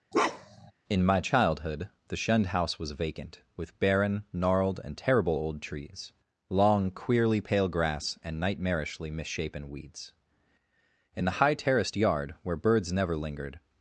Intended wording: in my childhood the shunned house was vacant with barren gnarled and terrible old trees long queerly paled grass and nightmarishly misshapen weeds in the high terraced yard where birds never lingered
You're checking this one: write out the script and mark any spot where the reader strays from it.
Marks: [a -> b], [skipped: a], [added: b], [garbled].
in my childhood the shunned house was vacant with barren gnarled and terrible old trees long queerly [paled -> pale] grass and nightmarishly misshapen weeds in the high terraced yard where birds never lingered